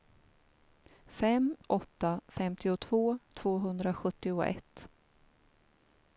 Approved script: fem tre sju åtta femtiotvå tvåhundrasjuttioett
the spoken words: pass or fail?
fail